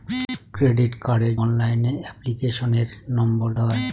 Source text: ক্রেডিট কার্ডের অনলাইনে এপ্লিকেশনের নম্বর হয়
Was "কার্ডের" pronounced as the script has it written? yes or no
yes